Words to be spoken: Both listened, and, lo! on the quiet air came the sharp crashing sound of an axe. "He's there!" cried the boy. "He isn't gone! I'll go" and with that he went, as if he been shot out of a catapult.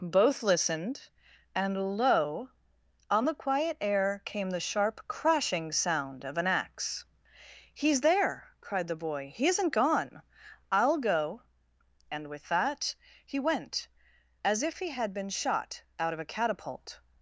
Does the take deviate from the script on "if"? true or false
false